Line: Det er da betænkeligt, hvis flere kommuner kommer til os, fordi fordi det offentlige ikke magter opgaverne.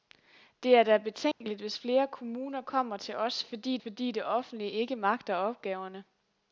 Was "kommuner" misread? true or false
false